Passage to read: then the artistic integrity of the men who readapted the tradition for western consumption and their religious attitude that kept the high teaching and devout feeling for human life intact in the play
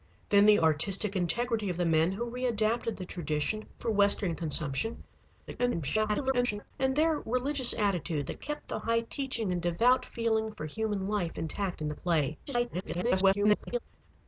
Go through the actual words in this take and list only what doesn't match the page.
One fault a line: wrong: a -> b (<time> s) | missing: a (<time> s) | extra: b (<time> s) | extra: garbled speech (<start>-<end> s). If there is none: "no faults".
extra: garbled speech (5.5-6.7 s)
extra: garbled speech (12.5-13.8 s)